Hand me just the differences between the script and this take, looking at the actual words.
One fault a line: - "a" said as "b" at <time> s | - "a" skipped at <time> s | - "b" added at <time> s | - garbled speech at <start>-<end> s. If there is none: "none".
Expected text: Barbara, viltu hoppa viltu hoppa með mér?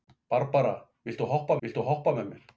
none